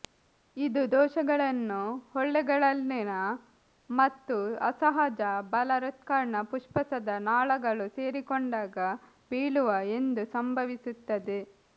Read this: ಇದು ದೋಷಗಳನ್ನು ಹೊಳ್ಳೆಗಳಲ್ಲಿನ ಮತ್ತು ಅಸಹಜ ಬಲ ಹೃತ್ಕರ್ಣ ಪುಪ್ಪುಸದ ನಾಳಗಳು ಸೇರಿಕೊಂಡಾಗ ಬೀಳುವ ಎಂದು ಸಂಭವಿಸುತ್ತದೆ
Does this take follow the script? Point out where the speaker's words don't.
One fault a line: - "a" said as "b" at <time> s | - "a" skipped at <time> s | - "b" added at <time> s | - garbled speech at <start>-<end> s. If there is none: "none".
none